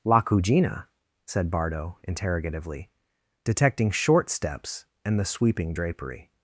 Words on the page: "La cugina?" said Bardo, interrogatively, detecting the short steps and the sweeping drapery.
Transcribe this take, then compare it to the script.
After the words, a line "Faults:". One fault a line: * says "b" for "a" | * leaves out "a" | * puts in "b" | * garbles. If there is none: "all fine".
"La cugina?" said Bardo, interrogatively, detecting short steps and the sweeping drapery.
Faults:
* leaves out "the"